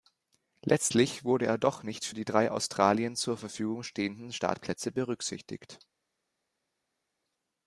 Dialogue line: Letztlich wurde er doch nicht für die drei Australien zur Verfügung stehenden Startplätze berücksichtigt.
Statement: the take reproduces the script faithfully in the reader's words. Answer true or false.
true